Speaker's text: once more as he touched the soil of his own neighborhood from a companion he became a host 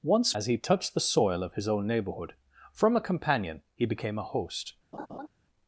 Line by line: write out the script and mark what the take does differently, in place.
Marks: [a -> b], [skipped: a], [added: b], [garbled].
once [skipped: more] as he touched the soil of his own neighborhood from a companion he became a host